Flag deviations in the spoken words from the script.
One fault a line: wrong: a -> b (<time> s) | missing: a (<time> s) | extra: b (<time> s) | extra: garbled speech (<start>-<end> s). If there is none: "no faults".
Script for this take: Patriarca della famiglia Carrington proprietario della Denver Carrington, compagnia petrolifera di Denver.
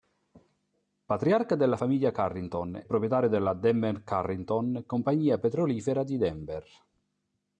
no faults